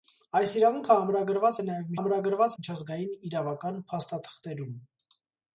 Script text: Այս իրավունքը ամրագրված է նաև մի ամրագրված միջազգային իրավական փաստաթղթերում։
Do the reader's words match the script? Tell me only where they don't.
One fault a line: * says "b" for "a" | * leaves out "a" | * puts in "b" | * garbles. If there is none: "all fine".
all fine